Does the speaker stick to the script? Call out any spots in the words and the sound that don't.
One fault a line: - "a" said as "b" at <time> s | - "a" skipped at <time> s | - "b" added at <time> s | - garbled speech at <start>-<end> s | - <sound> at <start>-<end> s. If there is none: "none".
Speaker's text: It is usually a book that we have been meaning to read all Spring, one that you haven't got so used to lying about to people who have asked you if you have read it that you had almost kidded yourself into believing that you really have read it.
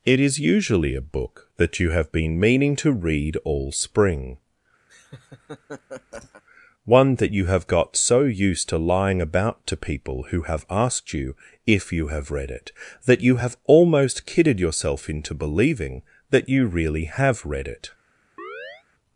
- "we" said as "you" at 1.8 s
- laugh at 4.9-6.4 s
- "haven't" said as "have" at 7.5 s
- "had" said as "have" at 13.4 s
- chirp at 18.4-18.8 s